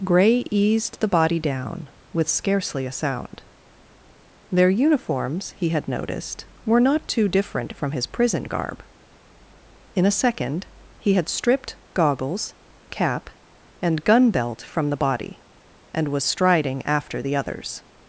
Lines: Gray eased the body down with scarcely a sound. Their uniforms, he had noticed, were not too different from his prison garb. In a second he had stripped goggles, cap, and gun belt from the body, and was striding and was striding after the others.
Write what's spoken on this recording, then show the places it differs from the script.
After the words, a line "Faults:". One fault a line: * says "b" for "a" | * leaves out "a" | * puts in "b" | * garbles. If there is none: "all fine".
Gray eased the body down with scarcely a sound. Their uniforms, he had noticed, were not too different from his prison garb. In a second he had stripped goggles, cap, and gun belt from the body, and was striding after the others.
Faults:
* leaves out "and was striding"